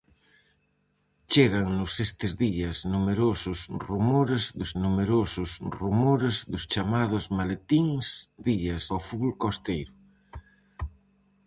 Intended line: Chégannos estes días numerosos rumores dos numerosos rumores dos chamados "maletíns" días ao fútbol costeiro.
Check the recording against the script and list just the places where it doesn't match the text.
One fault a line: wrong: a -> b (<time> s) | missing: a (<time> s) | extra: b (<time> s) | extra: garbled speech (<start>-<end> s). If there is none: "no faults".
no faults